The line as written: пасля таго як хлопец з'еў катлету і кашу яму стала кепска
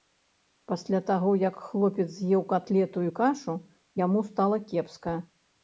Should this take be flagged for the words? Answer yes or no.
no